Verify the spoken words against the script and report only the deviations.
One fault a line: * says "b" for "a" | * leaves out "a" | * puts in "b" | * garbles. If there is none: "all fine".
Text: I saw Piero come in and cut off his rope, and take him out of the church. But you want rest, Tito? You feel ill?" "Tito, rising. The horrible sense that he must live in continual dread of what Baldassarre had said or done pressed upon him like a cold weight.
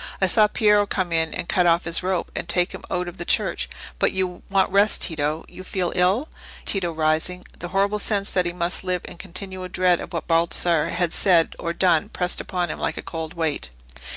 all fine